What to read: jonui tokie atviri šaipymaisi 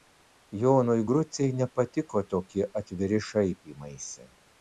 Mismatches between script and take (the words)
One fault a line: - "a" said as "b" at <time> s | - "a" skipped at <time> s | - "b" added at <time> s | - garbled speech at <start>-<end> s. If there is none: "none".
- "grucei nepatiko" added at 1.1 s